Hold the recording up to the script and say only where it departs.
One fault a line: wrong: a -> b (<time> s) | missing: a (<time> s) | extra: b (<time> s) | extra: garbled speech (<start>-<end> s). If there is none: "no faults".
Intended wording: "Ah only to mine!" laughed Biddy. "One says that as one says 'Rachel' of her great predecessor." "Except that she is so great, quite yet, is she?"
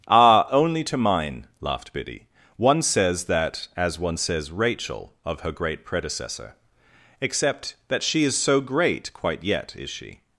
no faults